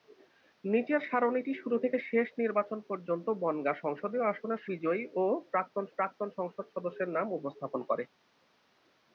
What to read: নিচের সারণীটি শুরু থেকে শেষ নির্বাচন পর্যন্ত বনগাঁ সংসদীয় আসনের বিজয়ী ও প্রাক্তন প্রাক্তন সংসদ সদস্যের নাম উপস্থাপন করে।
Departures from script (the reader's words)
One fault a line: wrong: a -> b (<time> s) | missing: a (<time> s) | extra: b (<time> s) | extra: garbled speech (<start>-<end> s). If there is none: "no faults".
no faults